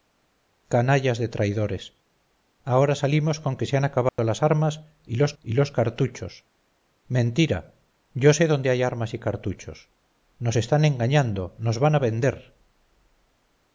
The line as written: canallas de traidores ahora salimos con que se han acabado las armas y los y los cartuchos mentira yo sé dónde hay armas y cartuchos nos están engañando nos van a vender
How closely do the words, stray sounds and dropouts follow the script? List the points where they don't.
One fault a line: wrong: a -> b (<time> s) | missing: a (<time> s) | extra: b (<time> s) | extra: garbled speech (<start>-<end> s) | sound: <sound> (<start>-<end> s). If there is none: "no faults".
sound: dropout (4.1-4.2 s)